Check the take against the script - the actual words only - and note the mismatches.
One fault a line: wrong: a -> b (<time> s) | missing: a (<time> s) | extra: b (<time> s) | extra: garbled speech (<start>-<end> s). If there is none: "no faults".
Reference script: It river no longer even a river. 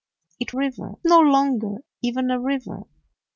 no faults